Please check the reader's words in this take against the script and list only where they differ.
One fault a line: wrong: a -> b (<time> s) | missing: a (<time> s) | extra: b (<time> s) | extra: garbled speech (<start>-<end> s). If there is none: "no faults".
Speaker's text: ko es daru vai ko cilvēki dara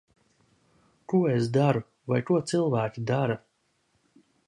no faults